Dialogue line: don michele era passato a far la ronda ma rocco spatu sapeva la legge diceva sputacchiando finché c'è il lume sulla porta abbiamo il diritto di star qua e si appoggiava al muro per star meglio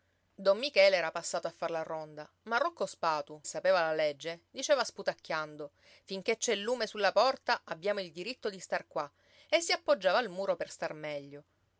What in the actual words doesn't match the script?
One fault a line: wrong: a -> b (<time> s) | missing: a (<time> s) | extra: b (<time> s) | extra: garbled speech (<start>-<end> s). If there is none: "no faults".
no faults